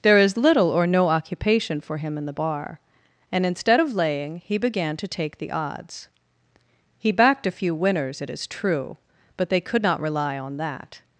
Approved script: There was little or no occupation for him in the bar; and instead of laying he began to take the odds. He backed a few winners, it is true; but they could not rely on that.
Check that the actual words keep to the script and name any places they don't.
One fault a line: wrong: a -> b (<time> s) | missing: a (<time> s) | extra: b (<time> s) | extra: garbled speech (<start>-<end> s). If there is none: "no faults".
wrong: was -> is (0.2 s)